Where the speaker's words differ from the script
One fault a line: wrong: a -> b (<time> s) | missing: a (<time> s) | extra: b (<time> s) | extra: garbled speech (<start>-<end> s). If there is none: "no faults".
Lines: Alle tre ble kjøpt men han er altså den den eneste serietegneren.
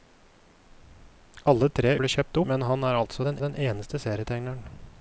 no faults